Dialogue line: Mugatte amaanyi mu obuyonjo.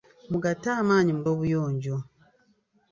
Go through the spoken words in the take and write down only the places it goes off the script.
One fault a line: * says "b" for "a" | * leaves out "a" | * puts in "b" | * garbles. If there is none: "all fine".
all fine